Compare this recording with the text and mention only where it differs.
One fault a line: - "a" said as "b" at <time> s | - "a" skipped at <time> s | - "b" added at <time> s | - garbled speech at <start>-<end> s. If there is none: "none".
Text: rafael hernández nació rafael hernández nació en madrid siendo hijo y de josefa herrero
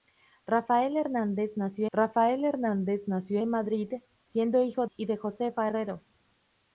none